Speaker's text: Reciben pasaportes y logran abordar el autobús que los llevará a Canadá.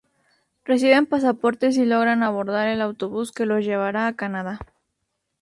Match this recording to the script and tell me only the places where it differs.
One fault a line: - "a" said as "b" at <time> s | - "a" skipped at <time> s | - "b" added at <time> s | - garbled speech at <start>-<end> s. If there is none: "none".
none